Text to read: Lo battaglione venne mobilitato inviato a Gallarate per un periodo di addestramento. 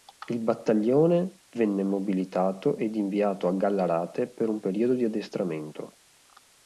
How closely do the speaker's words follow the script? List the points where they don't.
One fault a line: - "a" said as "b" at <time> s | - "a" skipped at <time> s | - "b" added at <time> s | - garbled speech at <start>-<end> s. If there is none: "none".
- "Lo" said as "Il" at 0.3 s
- "ed" added at 2.8 s